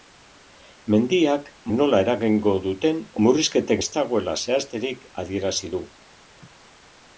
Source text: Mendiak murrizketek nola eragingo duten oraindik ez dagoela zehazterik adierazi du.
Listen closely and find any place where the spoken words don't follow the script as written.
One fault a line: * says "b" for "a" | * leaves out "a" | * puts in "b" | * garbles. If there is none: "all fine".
* leaves out "murrizketek"
* says "murrizketek" for "oraindik"